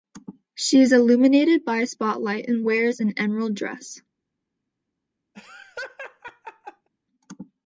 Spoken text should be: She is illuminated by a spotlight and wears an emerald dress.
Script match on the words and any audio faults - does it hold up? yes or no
no